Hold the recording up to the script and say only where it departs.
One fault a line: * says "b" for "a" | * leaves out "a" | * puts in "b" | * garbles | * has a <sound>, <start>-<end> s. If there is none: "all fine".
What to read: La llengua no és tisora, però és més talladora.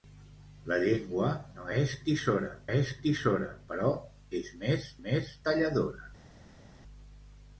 * puts in "és tisora"
* puts in "més"